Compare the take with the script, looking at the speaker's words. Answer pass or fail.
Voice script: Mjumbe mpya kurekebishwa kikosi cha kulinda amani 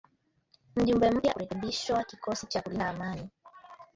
pass